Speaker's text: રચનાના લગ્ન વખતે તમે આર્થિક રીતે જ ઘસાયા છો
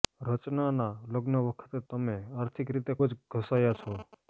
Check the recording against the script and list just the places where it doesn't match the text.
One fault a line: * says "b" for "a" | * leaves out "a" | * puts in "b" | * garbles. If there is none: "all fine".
all fine